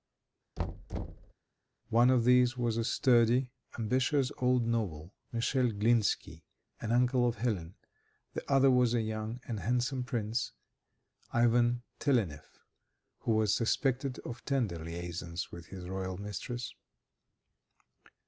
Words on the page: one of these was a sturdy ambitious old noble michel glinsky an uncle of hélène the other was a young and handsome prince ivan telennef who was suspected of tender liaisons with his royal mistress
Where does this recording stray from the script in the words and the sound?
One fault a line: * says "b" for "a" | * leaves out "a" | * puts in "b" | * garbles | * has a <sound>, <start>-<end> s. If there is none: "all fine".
* has a thud, 0.6-1.3 s